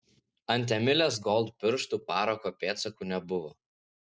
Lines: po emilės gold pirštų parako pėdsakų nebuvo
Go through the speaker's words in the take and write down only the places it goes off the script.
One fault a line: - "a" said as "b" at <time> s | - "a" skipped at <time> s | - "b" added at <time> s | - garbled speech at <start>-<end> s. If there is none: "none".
- "po" said as "ant" at 0.5 s